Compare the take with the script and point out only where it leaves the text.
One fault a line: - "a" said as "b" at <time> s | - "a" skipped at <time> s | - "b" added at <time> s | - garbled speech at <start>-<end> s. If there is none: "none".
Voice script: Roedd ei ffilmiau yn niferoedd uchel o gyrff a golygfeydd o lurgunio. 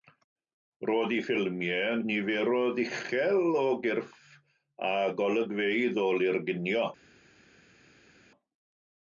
none